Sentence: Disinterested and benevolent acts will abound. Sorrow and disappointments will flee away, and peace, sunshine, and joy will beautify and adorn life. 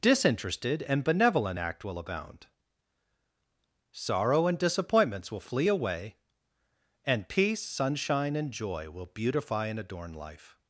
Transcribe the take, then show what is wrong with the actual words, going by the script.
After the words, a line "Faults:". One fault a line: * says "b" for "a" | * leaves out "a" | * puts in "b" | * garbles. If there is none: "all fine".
Disinterested and benevolent act will abound. Sorrow and disappointments will flee away, and peace, sunshine, and joy will beautify and adorn life.
Faults:
* says "act" for "acts"